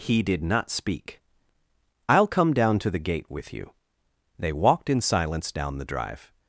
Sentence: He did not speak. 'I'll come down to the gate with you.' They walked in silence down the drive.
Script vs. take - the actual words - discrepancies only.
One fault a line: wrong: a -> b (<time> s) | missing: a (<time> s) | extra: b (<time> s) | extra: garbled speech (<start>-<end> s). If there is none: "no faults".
no faults